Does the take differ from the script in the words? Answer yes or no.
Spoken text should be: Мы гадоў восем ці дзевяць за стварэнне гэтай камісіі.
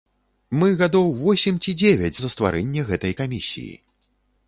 no